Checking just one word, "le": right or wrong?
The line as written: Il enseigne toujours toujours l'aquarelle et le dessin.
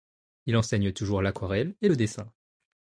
right